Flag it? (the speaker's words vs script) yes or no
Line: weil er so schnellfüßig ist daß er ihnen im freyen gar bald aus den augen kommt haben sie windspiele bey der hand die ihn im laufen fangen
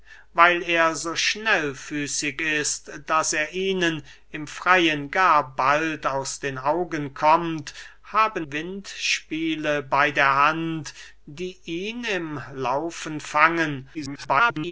yes